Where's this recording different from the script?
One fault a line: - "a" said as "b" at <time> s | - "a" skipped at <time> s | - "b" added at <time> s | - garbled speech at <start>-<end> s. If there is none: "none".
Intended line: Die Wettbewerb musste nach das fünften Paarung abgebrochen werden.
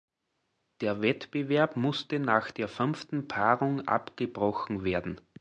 - "Die" said as "Der" at 0.8 s
- "das" said as "der" at 2.5 s